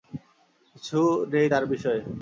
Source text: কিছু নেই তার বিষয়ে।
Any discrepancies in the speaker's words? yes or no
no